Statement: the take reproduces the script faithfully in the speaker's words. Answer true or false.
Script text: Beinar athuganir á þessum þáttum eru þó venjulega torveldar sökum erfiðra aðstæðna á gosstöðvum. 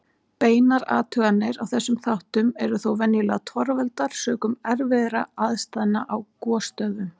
true